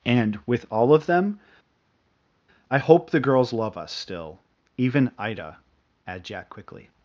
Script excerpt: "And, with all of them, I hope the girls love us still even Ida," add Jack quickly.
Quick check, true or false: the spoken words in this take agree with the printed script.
true